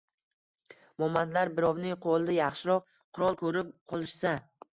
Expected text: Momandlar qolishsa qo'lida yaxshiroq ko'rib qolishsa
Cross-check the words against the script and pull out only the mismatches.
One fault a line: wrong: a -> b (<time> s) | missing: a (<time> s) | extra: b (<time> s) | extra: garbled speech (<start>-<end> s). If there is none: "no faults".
wrong: qolishsa -> birovning (1.6 s)
extra: qurol (3.2 s)